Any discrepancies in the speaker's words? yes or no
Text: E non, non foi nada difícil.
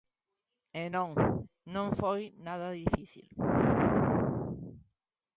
no